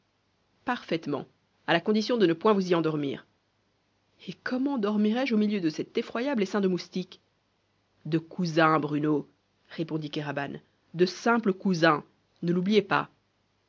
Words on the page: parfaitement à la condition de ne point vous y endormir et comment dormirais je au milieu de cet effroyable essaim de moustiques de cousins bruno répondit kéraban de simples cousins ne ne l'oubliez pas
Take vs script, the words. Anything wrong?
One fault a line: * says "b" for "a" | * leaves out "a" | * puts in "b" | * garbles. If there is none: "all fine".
* leaves out "ne"